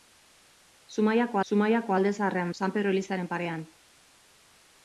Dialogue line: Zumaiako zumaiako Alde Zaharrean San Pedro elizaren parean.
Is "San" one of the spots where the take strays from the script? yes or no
no